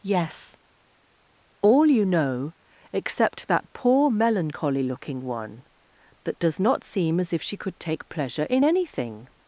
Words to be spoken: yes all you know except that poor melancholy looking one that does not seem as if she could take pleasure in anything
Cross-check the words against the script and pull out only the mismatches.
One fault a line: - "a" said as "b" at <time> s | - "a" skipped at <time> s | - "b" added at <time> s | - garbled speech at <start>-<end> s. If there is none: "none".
none